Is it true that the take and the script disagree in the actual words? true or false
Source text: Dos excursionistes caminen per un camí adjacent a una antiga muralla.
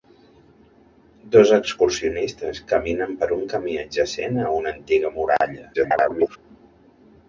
true